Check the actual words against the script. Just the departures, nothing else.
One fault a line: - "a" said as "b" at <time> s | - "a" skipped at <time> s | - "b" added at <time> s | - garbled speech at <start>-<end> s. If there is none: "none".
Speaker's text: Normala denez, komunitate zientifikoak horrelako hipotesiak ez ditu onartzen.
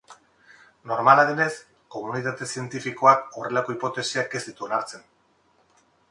none